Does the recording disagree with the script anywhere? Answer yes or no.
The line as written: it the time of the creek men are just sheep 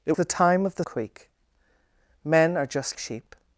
no